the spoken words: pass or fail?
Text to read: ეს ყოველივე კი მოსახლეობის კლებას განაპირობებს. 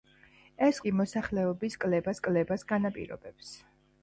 fail